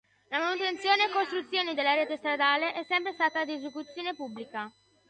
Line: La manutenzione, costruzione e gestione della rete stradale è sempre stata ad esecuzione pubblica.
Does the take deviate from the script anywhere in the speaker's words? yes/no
yes